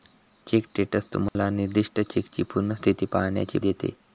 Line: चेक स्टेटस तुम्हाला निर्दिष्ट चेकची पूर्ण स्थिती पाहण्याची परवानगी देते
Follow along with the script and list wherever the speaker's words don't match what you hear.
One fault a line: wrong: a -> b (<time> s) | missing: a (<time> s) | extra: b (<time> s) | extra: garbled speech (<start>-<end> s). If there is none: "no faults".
missing: परवानगी (3.6 s)